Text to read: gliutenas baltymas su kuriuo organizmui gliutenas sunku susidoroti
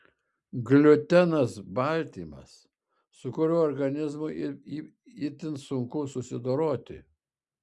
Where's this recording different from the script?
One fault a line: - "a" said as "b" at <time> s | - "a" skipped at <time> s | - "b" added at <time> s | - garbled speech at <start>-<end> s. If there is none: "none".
- "gliutenas" said as "itin" at 5.3 s